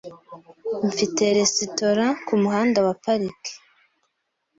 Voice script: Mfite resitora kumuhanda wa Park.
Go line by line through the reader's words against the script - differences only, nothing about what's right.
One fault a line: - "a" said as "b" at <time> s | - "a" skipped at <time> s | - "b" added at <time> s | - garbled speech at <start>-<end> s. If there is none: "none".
none